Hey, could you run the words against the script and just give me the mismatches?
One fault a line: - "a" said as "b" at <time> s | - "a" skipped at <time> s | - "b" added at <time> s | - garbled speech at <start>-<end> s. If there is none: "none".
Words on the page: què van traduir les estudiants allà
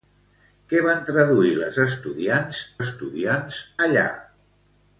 - "estudiants" added at 2.8 s